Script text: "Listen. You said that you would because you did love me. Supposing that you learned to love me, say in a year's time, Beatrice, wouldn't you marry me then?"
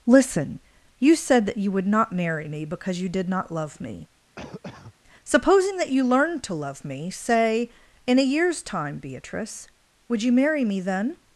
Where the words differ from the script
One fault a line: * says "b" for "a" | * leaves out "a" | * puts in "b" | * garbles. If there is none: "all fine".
* puts in "not marry me"
* puts in "not"
* says "would" for "wouldn't"